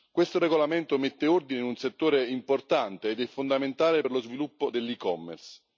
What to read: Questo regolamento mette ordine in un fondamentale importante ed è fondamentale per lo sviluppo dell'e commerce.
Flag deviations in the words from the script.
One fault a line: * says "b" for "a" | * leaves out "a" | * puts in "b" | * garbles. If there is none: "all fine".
* says "settore" for "fondamentale"